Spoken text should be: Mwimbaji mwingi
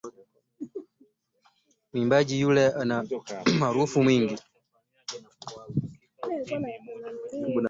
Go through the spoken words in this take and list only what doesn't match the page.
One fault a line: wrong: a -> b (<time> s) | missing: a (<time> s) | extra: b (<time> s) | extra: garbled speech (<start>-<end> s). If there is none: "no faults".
extra: yule ana umaarufu (2.4 s)